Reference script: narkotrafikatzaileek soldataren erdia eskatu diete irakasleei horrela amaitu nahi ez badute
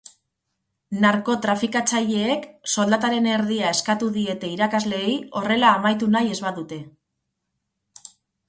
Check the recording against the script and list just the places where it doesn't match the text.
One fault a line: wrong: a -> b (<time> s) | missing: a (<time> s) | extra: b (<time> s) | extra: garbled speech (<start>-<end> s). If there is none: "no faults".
no faults